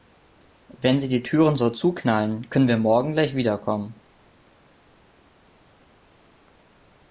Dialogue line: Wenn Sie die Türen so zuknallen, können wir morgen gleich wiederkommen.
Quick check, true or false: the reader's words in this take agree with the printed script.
true